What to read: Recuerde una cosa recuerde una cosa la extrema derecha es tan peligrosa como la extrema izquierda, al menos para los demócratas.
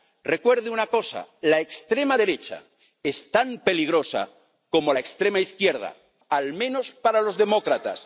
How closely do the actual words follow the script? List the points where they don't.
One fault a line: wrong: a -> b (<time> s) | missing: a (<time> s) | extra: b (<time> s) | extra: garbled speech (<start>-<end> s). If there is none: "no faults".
missing: recuerde una cosa (1.3 s)